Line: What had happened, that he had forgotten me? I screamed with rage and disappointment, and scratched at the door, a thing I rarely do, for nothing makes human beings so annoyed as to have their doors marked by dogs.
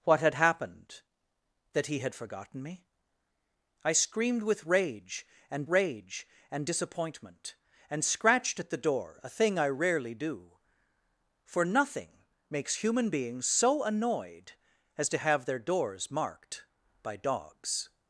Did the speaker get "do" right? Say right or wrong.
right